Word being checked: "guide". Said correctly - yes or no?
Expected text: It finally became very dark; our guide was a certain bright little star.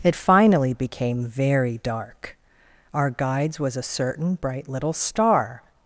no